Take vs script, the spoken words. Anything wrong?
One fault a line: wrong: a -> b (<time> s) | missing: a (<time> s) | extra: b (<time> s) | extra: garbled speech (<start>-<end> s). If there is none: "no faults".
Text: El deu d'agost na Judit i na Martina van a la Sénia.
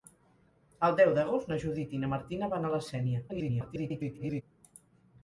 extra: garbled speech (3.3-4.4 s)